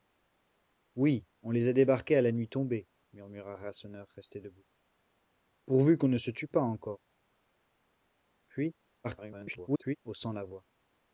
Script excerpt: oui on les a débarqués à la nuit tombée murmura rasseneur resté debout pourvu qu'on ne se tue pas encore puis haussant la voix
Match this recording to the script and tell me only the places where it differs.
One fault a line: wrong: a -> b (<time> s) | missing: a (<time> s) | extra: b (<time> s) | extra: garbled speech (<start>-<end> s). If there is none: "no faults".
extra: garbled speech (9.0-10.0 s)